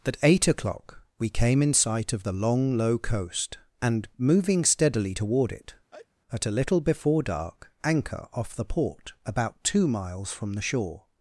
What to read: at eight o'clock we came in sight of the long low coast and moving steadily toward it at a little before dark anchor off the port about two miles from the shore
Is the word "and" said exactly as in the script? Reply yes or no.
yes